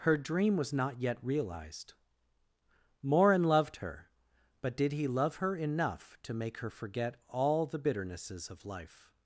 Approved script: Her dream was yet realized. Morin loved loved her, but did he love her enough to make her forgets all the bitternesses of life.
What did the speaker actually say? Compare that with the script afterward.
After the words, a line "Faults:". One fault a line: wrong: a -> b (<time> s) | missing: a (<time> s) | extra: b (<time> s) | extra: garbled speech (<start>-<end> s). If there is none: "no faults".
Her dream was not yet realized. Morin loved her, but did he love her enough to make her forget all the bitternesses of life.
Faults:
extra: not (0.7 s)
missing: loved (3.8 s)
wrong: forgets -> forget (6.7 s)